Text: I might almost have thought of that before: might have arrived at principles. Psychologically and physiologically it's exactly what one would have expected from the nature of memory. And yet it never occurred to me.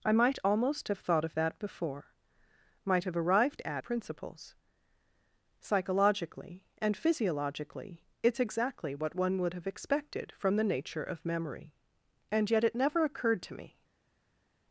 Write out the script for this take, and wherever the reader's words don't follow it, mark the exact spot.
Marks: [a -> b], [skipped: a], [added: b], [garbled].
I might almost have thought of that before: might have arrived at principles. Psychologically and physiologically it's exactly what one would have expected from the nature of memory. And yet it never occurred to me.